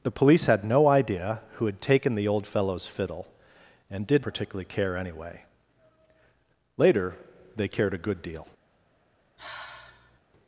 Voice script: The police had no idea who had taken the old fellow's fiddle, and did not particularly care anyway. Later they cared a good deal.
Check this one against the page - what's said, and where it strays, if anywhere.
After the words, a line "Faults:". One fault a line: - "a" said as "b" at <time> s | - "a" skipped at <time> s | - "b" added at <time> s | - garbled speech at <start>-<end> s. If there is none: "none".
The police had no idea who had taken the old fellow's fiddle, and did particularly care anyway. Later they cared a good deal.
Faults:
- "not" skipped at 4.2 s